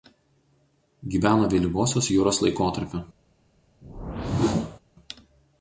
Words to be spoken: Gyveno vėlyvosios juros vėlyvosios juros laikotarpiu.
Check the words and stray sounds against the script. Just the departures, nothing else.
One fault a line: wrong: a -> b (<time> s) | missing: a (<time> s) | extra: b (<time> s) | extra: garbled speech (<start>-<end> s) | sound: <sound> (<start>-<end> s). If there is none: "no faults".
missing: vėlyvosios juros (2.4 s)
sound: whoosh (3.8-4.8 s)